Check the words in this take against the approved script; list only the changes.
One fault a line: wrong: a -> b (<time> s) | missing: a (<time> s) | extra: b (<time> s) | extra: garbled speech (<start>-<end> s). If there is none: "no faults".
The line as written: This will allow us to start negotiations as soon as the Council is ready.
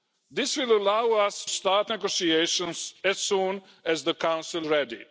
missing: to (1.4 s)
missing: is (4.7 s)